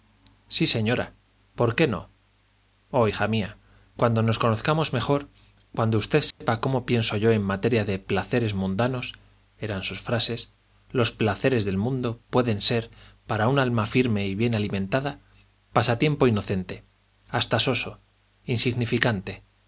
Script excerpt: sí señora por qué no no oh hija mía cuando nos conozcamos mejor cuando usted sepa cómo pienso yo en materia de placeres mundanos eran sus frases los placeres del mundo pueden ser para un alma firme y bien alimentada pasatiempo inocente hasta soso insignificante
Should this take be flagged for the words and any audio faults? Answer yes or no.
yes